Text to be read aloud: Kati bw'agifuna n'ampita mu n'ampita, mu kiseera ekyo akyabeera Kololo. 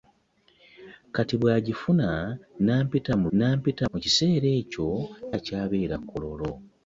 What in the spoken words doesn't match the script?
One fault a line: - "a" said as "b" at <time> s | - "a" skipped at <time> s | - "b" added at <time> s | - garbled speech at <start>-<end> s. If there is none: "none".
none